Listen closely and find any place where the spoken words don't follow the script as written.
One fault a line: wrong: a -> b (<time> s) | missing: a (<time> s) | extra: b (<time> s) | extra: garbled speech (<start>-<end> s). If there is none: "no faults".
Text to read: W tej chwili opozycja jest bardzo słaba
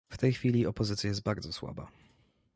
no faults